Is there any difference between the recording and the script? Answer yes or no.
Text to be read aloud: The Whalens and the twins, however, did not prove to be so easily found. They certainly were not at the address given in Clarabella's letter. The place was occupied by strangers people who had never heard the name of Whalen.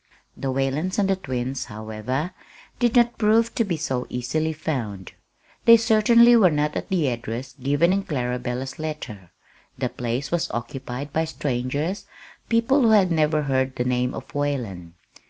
no